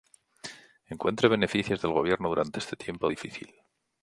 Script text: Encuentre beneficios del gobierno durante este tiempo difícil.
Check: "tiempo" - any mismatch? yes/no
no